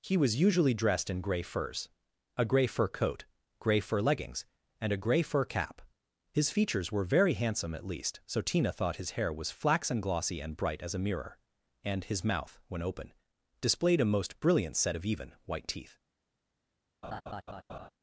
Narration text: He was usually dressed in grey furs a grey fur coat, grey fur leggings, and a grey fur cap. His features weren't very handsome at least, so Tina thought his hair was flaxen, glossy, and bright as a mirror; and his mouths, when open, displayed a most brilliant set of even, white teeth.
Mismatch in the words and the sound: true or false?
true